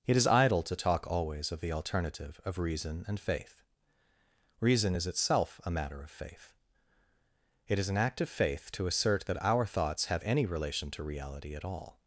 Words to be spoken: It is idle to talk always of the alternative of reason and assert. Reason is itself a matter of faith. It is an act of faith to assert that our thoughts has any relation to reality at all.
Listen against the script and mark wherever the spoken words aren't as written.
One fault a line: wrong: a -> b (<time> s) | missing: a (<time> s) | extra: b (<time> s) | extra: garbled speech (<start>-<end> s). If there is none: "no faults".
wrong: assert -> faith (3.2 s)
wrong: has -> have (10.1 s)